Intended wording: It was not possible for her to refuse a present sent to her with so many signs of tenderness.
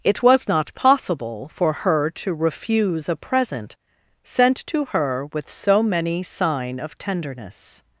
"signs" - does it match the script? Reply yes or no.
no